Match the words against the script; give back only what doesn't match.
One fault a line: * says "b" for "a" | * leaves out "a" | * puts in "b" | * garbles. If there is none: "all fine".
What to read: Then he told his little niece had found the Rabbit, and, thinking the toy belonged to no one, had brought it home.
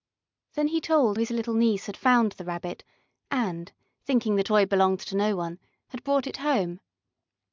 all fine